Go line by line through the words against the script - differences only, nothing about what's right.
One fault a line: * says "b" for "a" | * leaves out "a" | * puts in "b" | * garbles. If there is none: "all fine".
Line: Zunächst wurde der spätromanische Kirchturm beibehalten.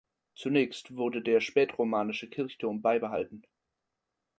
all fine